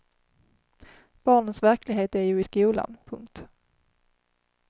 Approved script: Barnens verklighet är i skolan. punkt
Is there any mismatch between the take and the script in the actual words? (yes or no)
yes